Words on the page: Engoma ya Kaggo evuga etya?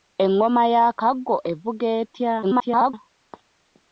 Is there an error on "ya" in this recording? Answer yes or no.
no